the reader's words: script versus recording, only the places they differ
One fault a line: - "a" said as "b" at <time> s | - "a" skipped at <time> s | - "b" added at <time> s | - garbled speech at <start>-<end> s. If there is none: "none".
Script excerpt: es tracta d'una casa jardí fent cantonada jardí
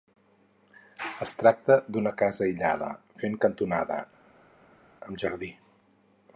- "jardí" said as "aïllada" at 2.5 s
- "amb" added at 5.1 s